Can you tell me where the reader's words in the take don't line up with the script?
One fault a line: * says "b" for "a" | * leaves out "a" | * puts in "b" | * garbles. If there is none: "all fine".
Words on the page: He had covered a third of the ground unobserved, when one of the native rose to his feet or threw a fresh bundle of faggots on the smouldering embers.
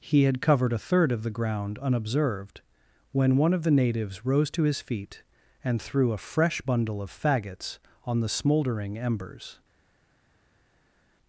* says "natives" for "native"
* says "and" for "or"